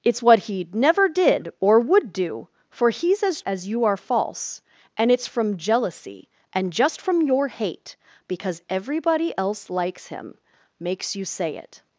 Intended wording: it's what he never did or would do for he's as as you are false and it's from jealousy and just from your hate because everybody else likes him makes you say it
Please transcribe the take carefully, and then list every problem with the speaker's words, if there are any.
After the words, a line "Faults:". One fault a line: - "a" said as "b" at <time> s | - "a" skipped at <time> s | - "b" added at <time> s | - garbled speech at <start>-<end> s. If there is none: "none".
it's what he never did or would do for he's as as you are false and it's from jealousy and just from your hate because everybody else likes him makes you say it
Faults:
none